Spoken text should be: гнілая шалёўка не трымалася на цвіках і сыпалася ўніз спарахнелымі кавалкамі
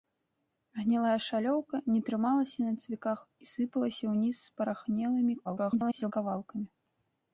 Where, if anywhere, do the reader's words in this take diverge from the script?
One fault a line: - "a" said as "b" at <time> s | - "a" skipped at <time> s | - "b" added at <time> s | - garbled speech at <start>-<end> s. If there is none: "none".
- garbled speech at 5.4-6.1 s